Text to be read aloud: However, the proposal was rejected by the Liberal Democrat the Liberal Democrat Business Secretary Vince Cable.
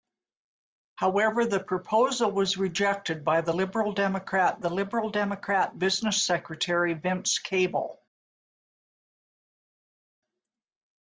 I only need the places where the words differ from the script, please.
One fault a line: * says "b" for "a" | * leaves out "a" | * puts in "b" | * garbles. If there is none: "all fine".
all fine